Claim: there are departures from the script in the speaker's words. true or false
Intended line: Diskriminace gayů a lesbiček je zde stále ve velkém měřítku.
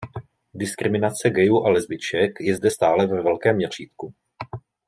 false